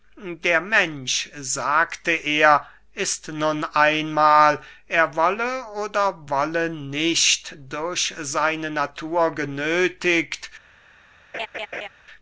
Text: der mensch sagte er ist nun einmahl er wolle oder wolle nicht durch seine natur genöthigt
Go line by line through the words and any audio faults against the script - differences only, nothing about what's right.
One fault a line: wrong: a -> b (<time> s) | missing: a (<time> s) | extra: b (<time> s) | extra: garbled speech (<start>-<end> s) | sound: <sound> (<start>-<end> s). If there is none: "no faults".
sound: laugh (11.3-11.9 s)